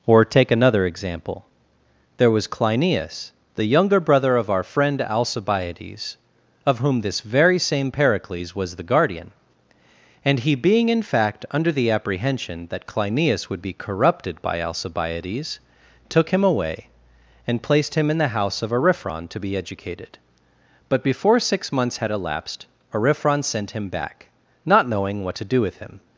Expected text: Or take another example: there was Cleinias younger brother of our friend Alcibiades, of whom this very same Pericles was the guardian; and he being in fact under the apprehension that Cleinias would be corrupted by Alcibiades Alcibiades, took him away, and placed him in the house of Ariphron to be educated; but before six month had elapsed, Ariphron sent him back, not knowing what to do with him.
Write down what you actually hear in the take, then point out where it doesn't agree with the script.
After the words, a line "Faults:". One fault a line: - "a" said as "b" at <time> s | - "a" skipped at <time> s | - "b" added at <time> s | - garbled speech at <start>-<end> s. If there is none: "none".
Or take another example: there was Cleinias the younger brother of our friend Alcibiades, of whom this very same Pericles was the guardian; and he being in fact under the apprehension that Cleinias would be corrupted by Alcibiades, took him away, and placed him in the house of Ariphron to be educated; but before six months had elapsed, Ariphron sent him back, not knowing what to do with him.
Faults:
- "the" added at 3.5 s
- "Alcibiades" skipped at 15.6 s
- "month" said as "months" at 21.7 s